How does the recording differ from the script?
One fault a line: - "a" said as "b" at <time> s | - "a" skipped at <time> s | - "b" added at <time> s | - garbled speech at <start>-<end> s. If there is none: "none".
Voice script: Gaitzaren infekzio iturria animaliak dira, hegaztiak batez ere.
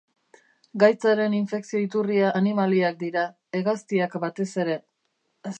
none